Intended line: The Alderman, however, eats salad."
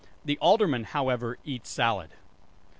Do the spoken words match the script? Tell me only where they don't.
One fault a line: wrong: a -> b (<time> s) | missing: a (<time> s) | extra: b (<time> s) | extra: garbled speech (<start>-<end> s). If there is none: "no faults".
no faults